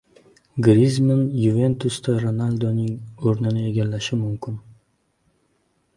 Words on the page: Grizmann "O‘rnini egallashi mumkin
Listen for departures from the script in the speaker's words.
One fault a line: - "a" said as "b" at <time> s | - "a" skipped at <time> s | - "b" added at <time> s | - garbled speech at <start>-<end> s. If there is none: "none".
- "Yuventus"da Ronalduning" added at 1.4 s